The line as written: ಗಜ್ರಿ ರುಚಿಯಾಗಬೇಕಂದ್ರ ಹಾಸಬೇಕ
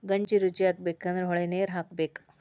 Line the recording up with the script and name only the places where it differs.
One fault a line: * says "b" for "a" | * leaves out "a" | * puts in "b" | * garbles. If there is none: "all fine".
* puts in "ಹೊಳಿನೇರ"